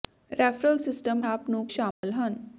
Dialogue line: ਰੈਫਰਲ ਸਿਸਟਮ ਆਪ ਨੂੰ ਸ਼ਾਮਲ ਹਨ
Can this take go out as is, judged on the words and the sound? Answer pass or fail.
fail